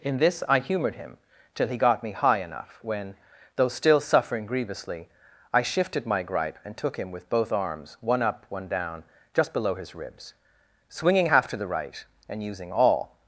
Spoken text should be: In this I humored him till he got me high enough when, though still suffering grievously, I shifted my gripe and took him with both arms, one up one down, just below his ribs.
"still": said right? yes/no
yes